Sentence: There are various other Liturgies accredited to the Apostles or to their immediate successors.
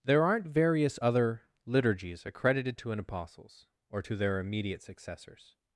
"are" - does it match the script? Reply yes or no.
no